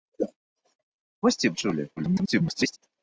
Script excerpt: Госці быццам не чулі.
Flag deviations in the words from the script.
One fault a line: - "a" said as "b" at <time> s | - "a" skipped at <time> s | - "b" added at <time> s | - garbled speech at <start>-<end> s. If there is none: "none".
- "быццам" skipped at 1.5 s
- garbled speech at 2.0-2.8 s